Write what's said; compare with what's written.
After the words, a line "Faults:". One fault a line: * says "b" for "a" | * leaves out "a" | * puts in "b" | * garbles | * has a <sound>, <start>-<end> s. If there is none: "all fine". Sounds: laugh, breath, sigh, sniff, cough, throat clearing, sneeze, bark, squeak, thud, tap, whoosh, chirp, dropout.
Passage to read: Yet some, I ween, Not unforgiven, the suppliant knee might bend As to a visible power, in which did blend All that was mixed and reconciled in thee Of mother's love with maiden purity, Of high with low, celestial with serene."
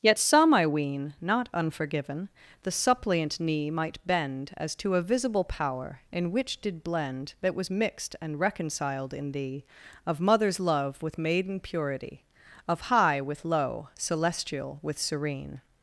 Yet some, I ween, Not unforgiven, the suppliant knee might bend As to a visible power, in which did blend that was mixed and reconciled in thee Of mother's love with maiden purity, Of high with low, celestial with serene."
Faults:
* leaves out "All"